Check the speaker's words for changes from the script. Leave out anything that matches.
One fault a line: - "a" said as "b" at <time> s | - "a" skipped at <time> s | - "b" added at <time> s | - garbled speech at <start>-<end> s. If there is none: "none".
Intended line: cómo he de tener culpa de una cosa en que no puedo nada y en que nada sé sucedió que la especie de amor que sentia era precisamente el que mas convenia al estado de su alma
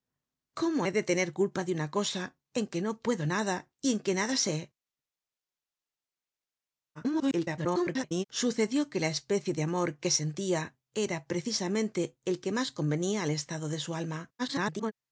- garbled speech at 6.9-8.2 s
- garbled speech at 14.4-14.9 s